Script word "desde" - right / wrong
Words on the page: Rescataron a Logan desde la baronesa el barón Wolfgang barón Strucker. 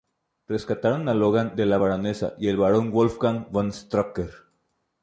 wrong